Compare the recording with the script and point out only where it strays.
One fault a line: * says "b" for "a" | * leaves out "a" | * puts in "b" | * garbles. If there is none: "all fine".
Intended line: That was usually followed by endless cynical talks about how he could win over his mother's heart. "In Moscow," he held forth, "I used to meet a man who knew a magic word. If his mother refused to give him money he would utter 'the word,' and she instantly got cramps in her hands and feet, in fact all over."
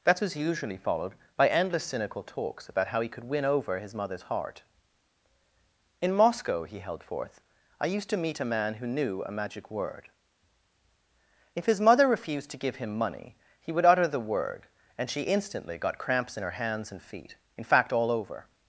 all fine